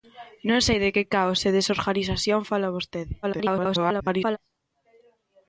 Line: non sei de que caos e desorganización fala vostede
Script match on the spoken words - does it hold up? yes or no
no